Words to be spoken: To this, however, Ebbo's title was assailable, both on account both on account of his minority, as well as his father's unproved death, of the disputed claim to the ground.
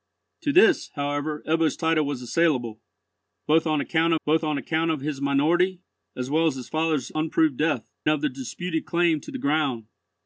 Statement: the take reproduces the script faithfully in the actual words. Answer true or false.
true